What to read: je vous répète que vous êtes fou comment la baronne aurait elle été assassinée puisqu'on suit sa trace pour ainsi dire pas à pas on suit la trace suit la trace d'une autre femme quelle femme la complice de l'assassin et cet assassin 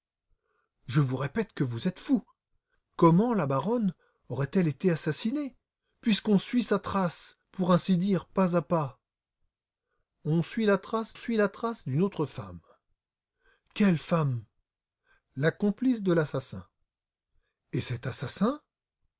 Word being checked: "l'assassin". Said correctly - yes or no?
yes